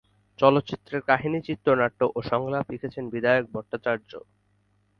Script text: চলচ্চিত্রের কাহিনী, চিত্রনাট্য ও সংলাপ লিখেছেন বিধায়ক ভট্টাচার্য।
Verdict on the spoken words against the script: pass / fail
pass